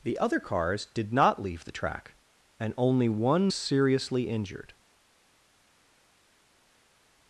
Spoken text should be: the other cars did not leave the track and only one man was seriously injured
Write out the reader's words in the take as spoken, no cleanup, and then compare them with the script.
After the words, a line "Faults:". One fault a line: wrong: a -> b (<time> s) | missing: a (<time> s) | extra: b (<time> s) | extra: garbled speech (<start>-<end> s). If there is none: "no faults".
the other cars did not leave the track and only one seriously injured
Faults:
missing: man was (3.5 s)